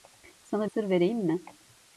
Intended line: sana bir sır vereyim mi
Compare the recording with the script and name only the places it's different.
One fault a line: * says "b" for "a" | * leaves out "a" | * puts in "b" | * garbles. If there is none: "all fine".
* leaves out "bir"